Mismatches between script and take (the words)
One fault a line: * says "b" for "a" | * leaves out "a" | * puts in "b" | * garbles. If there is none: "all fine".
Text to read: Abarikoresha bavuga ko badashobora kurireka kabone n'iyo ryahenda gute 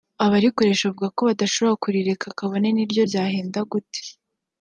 all fine